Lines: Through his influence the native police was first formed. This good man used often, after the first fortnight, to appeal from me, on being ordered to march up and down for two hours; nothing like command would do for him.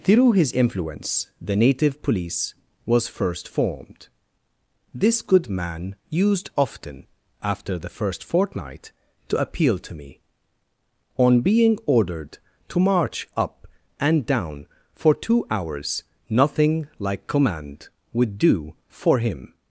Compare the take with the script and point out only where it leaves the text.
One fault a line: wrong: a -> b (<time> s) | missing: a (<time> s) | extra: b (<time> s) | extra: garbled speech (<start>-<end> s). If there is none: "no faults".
wrong: from -> to (9.8 s)